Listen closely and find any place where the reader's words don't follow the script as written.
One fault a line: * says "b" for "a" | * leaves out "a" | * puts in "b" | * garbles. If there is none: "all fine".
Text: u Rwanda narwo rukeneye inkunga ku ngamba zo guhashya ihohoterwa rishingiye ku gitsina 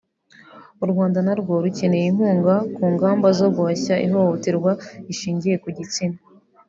all fine